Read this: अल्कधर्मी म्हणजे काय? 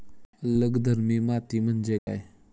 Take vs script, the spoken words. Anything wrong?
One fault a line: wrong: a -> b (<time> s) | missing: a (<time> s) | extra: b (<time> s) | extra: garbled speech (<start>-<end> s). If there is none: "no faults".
extra: माती (1.2 s)